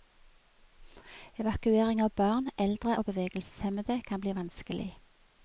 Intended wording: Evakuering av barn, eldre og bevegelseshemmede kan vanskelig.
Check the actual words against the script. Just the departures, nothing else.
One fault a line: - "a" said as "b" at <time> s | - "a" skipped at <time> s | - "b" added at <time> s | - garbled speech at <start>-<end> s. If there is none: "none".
- "bli" added at 4.2 s